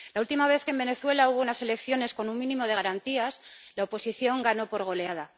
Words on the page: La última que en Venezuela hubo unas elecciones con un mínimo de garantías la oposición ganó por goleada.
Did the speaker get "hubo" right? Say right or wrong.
right